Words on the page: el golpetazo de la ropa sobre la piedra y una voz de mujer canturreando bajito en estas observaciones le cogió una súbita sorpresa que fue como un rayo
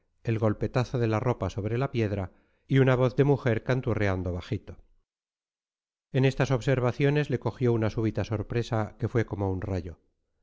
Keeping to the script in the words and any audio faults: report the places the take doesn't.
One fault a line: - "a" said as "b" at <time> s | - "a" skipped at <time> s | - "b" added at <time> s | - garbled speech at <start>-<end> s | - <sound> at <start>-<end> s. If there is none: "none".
none